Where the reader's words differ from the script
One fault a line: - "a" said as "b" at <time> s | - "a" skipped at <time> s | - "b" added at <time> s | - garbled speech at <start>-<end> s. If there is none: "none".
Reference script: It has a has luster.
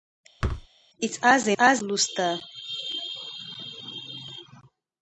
none